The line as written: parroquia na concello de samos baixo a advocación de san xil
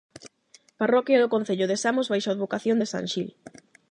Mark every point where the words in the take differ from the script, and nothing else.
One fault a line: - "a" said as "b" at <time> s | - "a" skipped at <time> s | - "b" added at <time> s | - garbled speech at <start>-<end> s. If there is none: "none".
- "na" said as "do" at 1.2 s